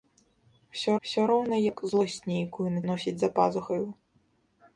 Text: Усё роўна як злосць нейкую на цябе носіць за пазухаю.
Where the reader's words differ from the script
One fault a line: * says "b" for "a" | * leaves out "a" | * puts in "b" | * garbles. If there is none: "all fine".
* puts in "усё"
* leaves out "цябе"